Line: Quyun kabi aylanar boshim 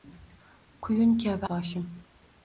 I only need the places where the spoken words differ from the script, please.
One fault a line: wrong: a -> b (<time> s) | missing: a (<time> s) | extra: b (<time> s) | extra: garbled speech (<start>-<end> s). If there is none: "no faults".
missing: aylanar (1.5 s)